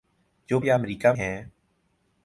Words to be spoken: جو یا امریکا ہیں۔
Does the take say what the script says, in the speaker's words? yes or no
yes